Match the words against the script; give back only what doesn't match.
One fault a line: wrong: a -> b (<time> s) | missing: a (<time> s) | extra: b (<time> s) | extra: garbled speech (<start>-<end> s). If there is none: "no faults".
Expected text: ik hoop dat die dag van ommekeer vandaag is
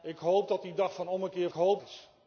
wrong: vandaag -> hoop (1.5 s)